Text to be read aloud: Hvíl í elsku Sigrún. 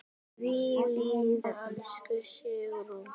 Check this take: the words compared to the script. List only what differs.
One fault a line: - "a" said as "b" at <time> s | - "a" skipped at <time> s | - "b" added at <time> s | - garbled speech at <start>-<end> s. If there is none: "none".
none